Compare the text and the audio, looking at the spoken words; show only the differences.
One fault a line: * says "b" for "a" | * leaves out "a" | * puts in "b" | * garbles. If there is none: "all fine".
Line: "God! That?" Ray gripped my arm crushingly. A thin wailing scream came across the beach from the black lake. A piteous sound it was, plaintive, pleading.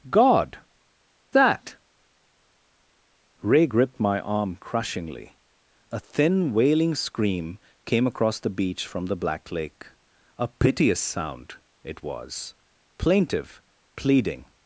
all fine